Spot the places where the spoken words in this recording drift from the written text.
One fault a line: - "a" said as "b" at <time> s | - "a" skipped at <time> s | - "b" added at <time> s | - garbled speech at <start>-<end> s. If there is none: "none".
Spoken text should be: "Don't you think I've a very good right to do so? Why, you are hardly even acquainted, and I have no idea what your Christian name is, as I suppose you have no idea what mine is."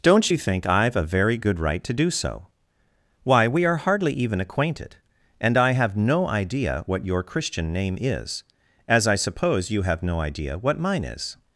- "you" said as "we" at 3.5 s